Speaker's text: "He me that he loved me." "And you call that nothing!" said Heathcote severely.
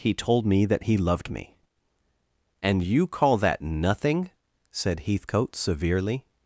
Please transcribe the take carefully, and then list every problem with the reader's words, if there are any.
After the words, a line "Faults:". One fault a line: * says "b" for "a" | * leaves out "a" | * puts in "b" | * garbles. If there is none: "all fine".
"He told me that he loved me." "And you call that nothing!" said Heathcote severely.
Faults:
* puts in "told"